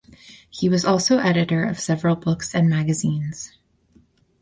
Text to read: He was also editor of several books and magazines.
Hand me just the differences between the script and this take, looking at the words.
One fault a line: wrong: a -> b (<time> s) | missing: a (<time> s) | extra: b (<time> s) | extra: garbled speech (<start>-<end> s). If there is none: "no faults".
no faults